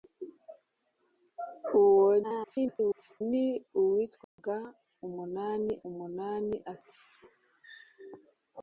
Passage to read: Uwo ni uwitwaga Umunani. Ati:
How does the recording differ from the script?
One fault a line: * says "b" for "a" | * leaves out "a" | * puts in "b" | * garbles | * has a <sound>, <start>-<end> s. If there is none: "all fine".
* garbles
* has a dropout, 4.2-4.4 s
* puts in "Umunani"